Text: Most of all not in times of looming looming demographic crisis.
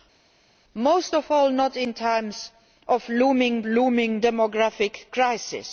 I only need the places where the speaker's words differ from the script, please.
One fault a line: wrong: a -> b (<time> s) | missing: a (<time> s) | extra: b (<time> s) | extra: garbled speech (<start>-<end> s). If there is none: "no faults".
no faults